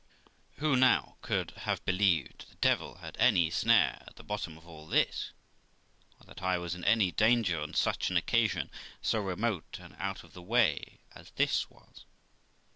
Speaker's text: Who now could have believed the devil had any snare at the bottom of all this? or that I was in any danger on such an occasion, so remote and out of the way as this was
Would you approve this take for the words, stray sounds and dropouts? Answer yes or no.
yes